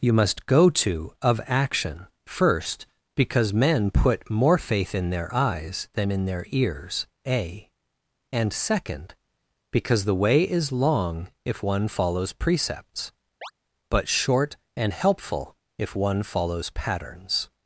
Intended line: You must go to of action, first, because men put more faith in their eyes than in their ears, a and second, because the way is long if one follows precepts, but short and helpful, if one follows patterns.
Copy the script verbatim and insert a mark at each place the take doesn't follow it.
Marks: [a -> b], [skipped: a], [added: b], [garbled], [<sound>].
You must go to of action, first, because men put more faith in their eyes than in their ears, a and second, because the way is long if one follows precepts, [chirp] but short and helpful, if one follows patterns.